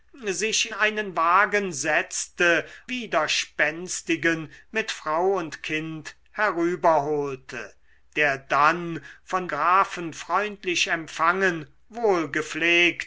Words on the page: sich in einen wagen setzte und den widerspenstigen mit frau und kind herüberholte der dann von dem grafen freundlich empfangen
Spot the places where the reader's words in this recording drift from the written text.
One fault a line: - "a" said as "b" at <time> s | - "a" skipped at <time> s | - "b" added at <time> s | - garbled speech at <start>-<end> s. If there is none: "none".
- "in" skipped at 0.7 s
- "und den" skipped at 2.7 s
- "dem" skipped at 9.5 s